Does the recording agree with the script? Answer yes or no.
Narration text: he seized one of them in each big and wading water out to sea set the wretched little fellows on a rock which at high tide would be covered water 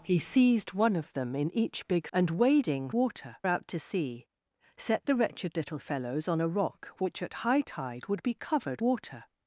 yes